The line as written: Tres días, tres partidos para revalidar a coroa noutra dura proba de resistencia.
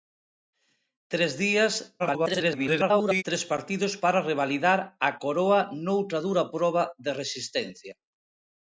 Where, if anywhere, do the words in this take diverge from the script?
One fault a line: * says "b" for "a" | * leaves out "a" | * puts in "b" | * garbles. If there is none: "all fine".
* garbles